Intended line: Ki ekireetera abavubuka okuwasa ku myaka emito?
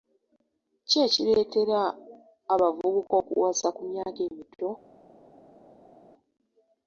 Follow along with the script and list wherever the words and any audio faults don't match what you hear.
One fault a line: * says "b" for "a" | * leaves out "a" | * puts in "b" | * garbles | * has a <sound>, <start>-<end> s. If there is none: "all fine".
all fine